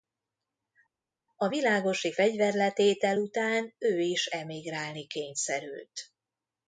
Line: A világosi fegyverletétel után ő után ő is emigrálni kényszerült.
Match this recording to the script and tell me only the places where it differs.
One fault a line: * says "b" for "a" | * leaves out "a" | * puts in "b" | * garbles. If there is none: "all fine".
* leaves out "után ő"